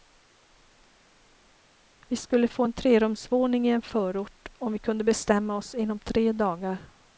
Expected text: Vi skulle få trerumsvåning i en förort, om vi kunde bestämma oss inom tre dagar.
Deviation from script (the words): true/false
true